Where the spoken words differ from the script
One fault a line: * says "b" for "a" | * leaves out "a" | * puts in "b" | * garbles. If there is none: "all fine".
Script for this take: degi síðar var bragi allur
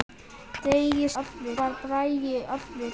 * says "allur" for "síðar"